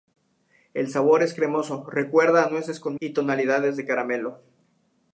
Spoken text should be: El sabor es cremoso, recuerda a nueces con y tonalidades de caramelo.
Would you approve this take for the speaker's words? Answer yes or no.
yes